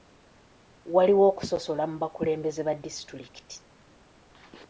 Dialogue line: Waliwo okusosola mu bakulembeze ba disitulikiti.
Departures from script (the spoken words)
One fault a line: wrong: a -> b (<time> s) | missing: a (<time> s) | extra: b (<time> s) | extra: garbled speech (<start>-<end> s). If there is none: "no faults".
no faults